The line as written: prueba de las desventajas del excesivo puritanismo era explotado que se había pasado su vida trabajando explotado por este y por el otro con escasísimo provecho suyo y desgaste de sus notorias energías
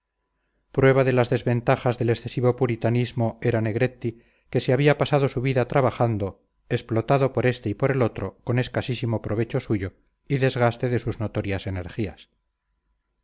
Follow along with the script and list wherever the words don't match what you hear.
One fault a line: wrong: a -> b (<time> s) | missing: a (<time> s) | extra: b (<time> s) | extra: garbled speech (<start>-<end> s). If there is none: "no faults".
wrong: explotado -> negretti (3.6 s)